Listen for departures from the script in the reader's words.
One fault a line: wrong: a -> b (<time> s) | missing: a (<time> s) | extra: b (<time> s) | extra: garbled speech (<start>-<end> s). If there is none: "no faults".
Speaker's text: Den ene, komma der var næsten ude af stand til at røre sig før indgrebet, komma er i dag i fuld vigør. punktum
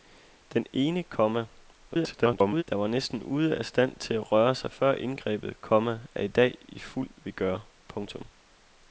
extra: garbled speech (1.9-2.6 s)